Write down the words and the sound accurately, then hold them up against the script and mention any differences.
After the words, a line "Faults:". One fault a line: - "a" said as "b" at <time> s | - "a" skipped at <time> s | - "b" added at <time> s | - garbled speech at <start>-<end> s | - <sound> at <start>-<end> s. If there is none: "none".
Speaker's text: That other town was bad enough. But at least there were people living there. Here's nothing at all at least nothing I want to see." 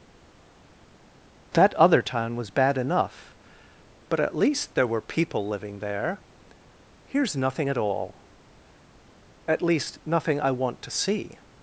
That other town was bad enough. But at least there were people living there. Here's nothing at all at least nothing I want to see."
Faults:
none